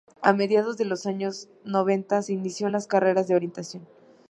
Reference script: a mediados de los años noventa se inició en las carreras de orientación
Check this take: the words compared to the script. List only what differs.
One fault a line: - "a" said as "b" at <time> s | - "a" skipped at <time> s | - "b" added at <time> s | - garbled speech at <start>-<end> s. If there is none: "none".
none